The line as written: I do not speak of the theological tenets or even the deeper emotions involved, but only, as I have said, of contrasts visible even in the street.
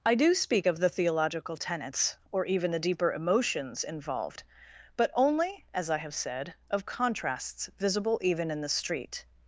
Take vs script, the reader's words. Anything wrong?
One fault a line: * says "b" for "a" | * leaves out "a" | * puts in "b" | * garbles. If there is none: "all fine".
* leaves out "not"